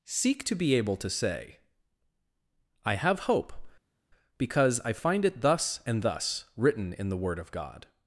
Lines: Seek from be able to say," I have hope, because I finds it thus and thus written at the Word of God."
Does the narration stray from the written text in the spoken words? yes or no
yes